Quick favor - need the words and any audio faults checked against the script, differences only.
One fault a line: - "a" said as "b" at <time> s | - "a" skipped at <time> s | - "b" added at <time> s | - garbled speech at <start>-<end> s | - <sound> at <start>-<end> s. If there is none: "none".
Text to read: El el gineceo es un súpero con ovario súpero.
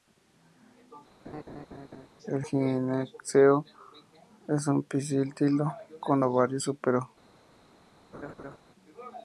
- laugh at 1.2-2.1 s
- "el" skipped at 2.4 s
- "súpero" said as "pistilo" at 4.8 s
- laugh at 8.1-8.6 s